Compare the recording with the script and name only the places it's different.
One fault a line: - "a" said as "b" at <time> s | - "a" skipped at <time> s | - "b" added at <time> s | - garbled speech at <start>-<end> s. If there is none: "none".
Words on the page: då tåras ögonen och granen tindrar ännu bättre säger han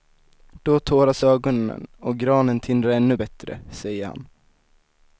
none